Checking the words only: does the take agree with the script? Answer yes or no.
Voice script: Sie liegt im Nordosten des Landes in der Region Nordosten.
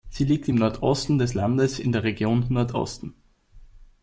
yes